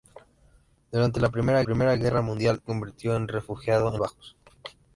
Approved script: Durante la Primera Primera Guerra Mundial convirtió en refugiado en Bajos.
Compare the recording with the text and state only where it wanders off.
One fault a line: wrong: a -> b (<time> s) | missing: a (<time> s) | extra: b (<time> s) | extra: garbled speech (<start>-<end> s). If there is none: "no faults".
no faults